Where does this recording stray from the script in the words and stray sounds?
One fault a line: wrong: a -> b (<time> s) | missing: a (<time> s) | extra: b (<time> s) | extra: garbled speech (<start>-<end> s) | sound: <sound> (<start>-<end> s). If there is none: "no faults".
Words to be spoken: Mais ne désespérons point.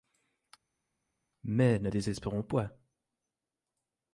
no faults